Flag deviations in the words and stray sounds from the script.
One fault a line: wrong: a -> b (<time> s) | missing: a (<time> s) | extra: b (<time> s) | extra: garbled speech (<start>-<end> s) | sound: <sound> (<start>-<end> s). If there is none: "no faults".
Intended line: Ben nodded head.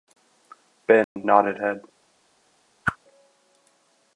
sound: dropout (1.0-1.2 s)
sound: whoosh (2.8-3.0 s)